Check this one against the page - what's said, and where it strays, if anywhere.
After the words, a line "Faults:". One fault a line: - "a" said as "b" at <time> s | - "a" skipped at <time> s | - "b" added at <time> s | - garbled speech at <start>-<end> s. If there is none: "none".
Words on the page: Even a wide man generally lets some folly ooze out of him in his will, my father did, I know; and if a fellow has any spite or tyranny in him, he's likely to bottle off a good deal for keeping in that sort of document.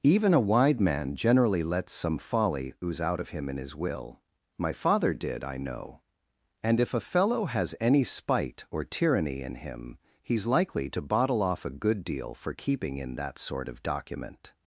Even a wide man generally lets some folly ooze out of him in his will, my father did, I know; and if a fellow has any spite or tyranny in him, he's likely to bottle off a good deal for keeping in that sort of document.
Faults:
none